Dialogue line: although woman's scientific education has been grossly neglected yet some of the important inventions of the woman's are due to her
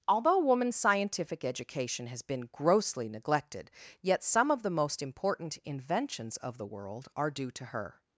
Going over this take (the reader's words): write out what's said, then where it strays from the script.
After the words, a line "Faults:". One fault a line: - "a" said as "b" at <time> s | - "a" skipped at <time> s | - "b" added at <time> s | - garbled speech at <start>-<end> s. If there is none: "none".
although woman's scientific education has been grossly neglected yet some of the most important inventions of the world are due to her
Faults:
- "most" added at 4.7 s
- "woman's" said as "world" at 6.6 s